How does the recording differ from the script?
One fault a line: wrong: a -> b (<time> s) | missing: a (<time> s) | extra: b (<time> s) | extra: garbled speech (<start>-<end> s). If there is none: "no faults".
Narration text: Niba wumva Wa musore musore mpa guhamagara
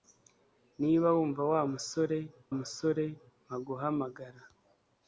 no faults